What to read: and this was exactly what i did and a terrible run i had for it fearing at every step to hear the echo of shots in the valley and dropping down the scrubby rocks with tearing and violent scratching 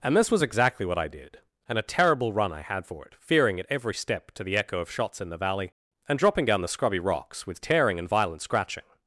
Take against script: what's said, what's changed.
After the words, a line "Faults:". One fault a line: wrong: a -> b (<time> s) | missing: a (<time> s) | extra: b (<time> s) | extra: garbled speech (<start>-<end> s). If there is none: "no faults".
and this was exactly what i did and a terrible run i had for it fearing at every step to the echo of shots in the valley and dropping down the scrubby rocks with tearing and violent scratching
Faults:
missing: hear (4.4 s)